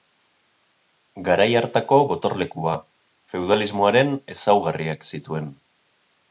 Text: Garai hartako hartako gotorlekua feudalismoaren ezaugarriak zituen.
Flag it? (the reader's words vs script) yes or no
yes